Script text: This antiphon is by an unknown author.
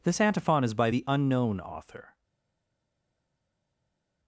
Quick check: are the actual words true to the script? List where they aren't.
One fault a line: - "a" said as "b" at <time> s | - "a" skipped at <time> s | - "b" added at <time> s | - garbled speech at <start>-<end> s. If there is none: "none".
- "an" said as "the" at 0.9 s